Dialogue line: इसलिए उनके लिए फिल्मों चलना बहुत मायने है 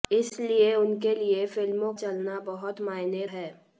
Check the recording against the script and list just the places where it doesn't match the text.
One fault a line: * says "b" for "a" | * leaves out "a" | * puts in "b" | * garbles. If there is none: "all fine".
all fine